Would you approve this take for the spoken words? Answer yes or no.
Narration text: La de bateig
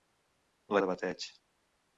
yes